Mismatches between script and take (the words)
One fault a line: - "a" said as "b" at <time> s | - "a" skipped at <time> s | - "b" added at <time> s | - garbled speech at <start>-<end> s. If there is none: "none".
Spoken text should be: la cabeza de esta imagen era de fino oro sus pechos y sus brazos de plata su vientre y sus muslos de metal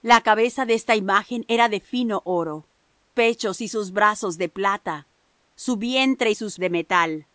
- "sus" skipped at 2.7 s
- "muslos" skipped at 6.6 s